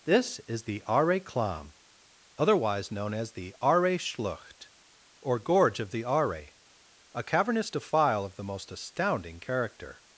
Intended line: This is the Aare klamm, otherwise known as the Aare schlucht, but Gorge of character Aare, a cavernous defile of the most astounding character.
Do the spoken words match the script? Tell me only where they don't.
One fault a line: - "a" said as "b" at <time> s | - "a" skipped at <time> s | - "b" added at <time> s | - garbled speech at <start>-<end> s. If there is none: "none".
- "but" said as "or" at 5.2 s
- "character" said as "the" at 5.9 s